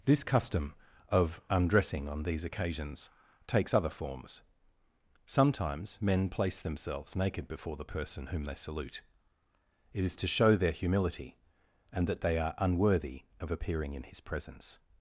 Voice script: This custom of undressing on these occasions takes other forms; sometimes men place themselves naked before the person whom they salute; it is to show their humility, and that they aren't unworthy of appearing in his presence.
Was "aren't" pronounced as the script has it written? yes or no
no